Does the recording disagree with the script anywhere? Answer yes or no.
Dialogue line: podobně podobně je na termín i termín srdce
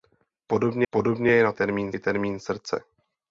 no